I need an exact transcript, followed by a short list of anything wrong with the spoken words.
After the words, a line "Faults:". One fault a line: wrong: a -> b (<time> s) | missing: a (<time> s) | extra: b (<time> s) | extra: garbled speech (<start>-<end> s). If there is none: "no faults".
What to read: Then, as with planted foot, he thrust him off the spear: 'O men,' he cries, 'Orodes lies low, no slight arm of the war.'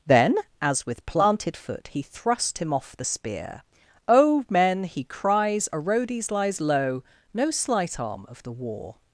Then, as with planted foot, he thrust him off the spear: 'O men,' he cries, 'Orodes lies low, no slight arm of the war.'
Faults:
no faults